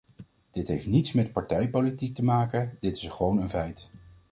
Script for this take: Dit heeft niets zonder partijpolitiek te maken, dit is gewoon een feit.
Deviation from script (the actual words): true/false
true